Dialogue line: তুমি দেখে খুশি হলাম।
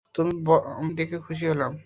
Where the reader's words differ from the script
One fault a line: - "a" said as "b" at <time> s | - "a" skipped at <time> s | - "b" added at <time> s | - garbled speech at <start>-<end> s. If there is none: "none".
none